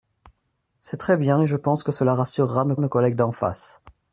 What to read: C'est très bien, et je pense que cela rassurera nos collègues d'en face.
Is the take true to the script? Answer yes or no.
no